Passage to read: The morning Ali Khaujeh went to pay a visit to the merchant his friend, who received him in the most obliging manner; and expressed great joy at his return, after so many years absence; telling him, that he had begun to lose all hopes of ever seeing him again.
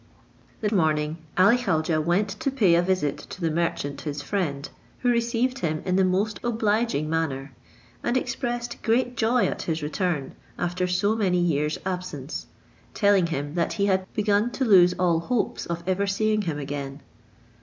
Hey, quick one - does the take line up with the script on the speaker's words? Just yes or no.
yes